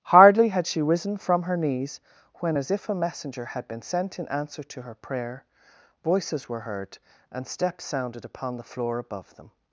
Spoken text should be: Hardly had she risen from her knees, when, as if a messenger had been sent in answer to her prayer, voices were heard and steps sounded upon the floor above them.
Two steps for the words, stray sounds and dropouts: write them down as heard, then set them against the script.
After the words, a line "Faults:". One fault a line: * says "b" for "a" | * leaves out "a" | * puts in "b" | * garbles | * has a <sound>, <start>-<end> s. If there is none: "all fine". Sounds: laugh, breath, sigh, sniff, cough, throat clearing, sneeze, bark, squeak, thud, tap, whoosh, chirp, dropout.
Hardly had she risen from her knees, when, as if a messenger had been sent in answer to her prayer, voices were heard and steps sounded upon the floor above them.
Faults:
all fine